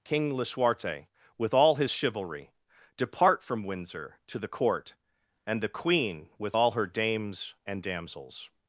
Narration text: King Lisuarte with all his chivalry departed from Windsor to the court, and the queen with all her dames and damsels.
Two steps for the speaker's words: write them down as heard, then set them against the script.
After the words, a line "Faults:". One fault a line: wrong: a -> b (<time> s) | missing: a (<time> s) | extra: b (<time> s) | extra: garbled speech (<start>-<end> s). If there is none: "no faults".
King Lisuarte with all his chivalry depart from Windsor to the court, and the queen with all her dames and damsels.
Faults:
wrong: departed -> depart (3.0 s)